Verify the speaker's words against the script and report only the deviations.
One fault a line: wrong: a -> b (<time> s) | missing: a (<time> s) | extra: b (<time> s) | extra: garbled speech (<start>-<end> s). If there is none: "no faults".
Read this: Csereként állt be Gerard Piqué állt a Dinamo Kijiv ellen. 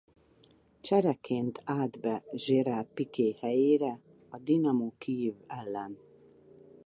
wrong: állt -> helyére (3.4 s)